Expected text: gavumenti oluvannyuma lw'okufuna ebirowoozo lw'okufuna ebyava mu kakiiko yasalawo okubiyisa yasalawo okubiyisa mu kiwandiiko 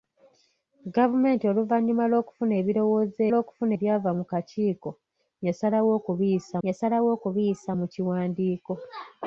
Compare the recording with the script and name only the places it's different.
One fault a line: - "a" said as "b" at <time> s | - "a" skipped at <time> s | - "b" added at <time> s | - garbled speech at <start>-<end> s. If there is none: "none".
none